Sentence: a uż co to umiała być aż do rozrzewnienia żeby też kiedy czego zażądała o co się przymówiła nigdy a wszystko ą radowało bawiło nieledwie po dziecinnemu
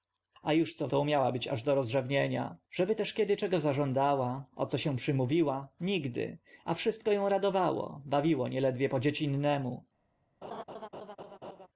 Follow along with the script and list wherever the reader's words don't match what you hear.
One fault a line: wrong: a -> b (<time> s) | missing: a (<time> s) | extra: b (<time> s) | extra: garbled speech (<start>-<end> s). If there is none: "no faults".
no faults